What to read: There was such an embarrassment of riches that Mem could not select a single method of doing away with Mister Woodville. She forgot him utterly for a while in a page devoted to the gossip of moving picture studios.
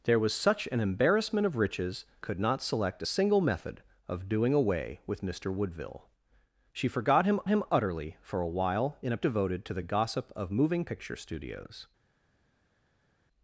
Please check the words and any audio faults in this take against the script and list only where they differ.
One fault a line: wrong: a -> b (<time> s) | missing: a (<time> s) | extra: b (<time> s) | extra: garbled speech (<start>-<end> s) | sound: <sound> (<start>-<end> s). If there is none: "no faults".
missing: that Mem (2.0 s)
extra: him (7.5 s)
missing: page (9.2 s)